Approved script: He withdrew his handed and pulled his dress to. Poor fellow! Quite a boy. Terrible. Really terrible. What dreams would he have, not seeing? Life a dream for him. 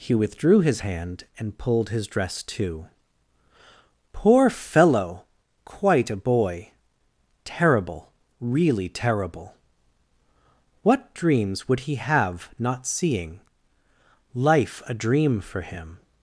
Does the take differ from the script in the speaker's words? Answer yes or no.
yes